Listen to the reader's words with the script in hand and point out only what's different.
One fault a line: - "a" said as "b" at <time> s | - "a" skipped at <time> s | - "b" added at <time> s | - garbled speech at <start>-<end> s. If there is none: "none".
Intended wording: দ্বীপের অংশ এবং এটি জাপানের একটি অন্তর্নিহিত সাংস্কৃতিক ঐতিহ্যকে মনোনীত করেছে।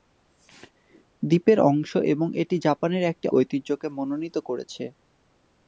- "অন্তর্নিহিত সাংস্কৃতিক" skipped at 3.3 s